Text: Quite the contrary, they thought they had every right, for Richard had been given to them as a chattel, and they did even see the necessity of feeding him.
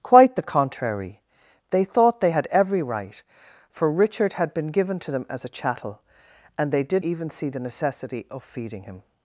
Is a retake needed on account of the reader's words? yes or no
no